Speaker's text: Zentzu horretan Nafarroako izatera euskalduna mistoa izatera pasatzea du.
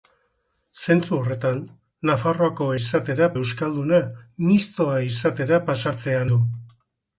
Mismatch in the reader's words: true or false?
false